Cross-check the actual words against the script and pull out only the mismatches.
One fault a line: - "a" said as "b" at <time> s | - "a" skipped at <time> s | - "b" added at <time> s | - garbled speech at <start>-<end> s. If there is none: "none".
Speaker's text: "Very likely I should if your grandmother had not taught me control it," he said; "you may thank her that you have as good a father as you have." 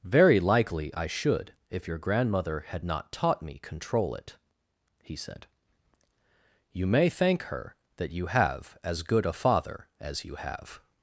none